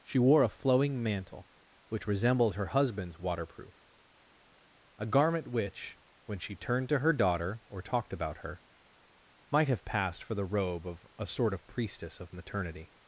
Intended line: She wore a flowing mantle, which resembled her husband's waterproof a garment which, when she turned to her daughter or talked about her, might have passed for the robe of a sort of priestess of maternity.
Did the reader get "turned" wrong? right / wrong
right